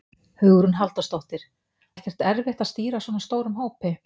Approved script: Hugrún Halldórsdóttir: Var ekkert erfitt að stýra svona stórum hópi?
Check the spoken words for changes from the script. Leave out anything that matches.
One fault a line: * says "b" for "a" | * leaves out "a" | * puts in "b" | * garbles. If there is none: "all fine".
* leaves out "Var"